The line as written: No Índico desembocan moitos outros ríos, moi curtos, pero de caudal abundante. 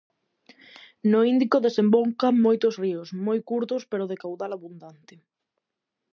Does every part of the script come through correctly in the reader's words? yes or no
no